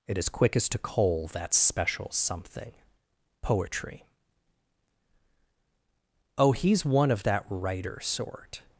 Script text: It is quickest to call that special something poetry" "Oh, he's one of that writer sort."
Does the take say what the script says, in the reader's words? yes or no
no